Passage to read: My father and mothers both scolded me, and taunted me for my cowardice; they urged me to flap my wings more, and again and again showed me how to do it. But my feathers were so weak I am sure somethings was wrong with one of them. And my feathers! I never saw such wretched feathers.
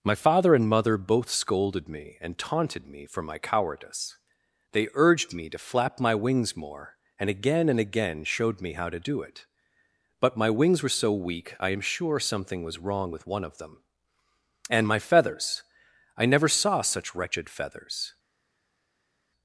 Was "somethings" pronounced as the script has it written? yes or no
no